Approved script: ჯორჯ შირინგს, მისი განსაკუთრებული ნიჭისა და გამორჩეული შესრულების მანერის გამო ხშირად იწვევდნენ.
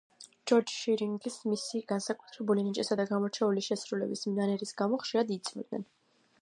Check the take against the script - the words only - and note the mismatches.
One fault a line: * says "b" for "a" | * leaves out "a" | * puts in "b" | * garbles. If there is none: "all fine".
all fine